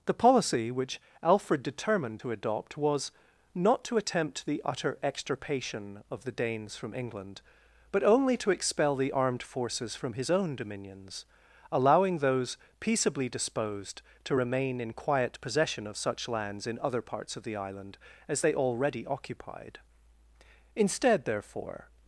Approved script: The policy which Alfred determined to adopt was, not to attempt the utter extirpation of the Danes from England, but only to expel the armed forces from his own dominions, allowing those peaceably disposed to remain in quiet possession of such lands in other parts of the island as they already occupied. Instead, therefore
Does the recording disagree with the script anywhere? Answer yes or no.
no